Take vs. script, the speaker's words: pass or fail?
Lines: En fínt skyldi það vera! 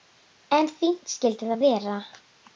pass